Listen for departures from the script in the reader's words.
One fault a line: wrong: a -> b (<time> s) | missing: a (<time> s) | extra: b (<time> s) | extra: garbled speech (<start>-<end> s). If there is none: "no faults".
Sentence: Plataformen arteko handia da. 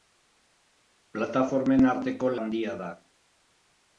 no faults